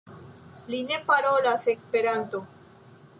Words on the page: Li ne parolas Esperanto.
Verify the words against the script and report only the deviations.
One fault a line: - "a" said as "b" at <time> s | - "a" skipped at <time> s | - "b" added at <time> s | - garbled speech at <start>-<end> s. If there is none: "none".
none